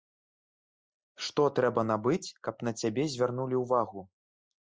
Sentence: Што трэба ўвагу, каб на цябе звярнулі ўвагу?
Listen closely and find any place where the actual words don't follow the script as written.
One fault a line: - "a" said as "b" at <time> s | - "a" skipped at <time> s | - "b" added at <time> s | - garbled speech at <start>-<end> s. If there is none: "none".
- "ўвагу" said as "набыць" at 1.9 s